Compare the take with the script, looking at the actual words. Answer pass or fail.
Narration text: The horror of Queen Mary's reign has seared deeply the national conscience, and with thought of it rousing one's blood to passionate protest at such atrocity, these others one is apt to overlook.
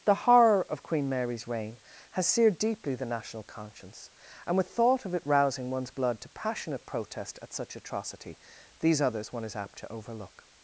pass